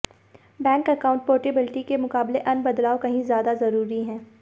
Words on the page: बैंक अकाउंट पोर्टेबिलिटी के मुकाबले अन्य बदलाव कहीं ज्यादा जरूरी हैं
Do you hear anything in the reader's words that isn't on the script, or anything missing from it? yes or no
no